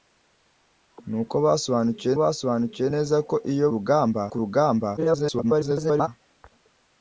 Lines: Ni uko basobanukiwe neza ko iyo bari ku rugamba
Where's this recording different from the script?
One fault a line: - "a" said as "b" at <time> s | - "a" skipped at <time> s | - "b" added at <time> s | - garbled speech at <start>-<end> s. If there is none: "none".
- "basobanukiwe" added at 2.2 s
- "bari" said as "rugamba" at 3.7 s
- garbled speech at 5.0-6.1 s